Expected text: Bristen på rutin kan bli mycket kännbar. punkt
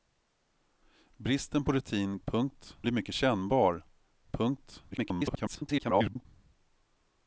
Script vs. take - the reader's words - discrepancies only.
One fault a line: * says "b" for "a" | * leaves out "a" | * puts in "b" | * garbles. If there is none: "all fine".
* says "punkt" for "kan"
* garbles